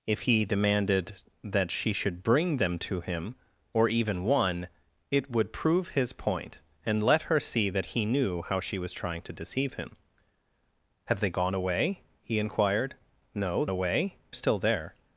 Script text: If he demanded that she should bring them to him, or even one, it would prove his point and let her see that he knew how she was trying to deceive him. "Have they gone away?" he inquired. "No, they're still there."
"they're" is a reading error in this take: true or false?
true